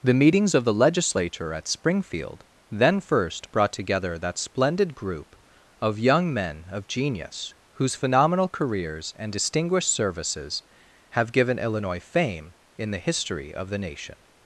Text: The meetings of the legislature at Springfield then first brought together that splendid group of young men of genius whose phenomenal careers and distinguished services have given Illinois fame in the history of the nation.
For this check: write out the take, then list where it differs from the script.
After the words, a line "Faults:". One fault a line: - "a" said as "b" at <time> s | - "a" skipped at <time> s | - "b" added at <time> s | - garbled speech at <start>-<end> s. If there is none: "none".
The meetings of the legislature at Springfield then first brought together that splendid group of young men of genius whose phenomenal careers and distinguished services have given Illinois fame in the history of the nation.
Faults:
none